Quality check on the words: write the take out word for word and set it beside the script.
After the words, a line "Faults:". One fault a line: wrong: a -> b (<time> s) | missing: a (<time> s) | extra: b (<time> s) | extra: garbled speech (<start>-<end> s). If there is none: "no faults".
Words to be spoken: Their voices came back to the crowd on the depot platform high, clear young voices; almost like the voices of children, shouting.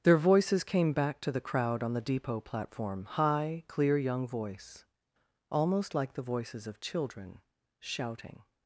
Their voices came back to the crowd on the depot platform high, clear young voice; almost like the voices of children, shouting.
Faults:
wrong: voices -> voice (4.3 s)